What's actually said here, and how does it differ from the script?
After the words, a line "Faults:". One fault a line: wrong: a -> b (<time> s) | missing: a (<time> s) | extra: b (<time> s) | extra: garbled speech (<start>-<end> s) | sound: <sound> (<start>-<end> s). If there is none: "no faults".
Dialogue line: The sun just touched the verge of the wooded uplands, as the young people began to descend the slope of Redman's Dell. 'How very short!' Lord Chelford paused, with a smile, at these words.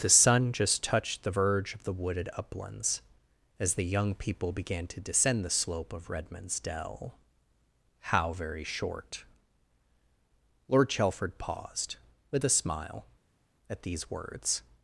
The sun just touched the verge of the wooded uplands, as the young people began to descend the slope of Redman's Dell. 'How very short!' Lord Chelford paused, with a smile, at these words.
Faults:
no faults